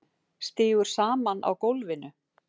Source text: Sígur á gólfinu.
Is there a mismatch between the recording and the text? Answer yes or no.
yes